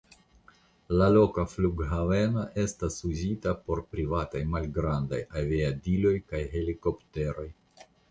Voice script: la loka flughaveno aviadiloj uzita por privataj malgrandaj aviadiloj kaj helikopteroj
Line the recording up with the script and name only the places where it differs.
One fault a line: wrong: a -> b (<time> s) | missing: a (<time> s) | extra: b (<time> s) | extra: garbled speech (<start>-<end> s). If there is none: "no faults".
wrong: aviadiloj -> estas (2.6 s)